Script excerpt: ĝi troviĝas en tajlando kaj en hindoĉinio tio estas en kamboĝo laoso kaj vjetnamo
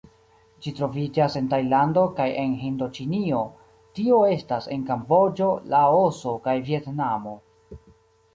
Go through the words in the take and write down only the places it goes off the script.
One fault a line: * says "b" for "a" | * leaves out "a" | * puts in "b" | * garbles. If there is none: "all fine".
all fine